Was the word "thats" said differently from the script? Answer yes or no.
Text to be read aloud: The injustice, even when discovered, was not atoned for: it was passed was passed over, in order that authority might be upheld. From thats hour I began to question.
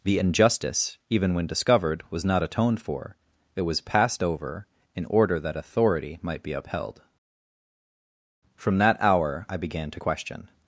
yes